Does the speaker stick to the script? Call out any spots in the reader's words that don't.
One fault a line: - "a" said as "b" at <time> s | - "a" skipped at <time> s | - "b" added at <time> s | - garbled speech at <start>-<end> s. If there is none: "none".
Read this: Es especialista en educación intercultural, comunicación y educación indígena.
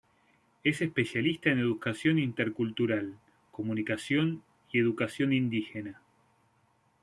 none